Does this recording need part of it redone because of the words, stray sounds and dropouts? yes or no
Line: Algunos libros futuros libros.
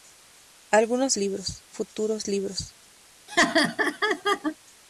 yes